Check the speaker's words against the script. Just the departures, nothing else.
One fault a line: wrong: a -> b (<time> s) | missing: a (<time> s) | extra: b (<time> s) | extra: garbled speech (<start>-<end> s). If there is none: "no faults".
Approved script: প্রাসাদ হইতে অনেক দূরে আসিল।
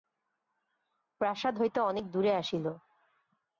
no faults